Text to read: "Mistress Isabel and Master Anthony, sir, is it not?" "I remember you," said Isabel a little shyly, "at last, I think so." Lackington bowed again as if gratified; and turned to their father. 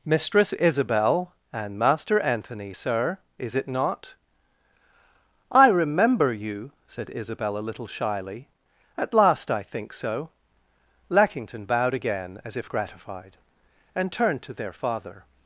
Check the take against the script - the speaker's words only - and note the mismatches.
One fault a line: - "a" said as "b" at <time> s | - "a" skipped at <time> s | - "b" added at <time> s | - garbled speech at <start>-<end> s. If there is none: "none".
none